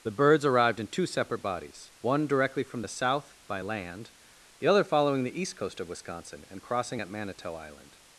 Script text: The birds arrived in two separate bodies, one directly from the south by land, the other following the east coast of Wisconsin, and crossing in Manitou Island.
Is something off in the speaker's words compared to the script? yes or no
yes